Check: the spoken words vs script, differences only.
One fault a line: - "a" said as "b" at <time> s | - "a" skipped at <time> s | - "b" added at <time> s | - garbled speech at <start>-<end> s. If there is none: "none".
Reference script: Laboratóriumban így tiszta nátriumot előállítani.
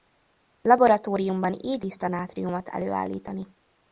none